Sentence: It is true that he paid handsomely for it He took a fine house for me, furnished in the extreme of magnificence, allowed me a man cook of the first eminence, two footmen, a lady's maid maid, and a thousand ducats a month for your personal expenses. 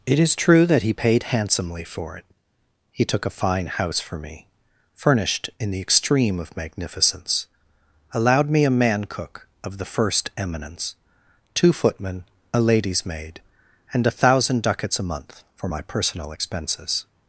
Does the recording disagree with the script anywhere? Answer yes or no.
yes